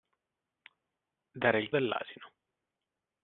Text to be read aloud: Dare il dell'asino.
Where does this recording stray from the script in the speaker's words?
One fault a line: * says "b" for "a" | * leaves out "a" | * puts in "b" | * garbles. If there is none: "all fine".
all fine